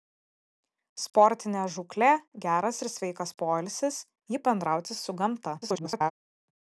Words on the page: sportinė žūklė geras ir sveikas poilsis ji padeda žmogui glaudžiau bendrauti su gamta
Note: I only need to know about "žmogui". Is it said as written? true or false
false